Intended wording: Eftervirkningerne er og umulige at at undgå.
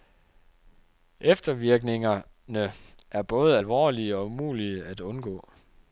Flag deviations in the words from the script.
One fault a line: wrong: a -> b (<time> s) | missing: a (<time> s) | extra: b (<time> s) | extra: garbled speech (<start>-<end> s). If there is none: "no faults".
extra: både alvorlige (3.2 s)
missing: at (5.0 s)